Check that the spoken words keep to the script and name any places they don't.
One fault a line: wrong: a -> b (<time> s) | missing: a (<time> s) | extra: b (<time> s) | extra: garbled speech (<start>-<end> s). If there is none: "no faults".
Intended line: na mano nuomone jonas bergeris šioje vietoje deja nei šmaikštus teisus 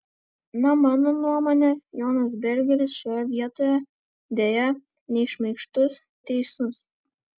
no faults